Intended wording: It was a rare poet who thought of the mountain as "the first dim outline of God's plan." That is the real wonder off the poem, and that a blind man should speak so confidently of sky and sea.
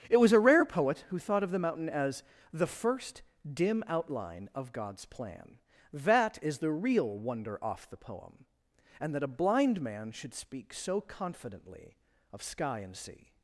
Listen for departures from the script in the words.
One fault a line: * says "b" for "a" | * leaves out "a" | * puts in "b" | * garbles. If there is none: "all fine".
all fine